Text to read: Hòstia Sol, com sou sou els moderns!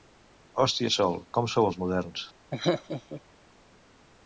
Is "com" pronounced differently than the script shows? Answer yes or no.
no